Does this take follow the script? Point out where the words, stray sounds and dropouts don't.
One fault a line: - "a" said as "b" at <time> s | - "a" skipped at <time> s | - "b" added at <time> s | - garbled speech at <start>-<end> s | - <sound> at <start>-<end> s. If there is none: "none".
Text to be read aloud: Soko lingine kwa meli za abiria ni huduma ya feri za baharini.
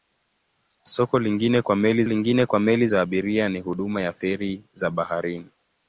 - "lingine kwa meli" added at 2.0 s